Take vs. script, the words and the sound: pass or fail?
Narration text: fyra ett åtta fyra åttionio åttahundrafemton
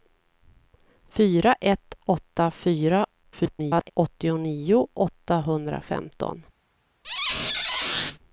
fail